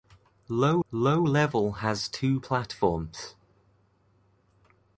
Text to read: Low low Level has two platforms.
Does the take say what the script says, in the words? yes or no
yes